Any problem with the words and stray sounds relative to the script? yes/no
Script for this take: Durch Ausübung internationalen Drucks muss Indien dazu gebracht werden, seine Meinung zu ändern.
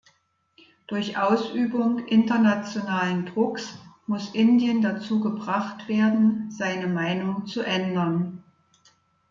no